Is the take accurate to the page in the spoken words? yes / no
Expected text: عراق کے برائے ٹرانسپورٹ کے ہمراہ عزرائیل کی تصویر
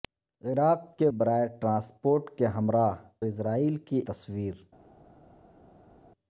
yes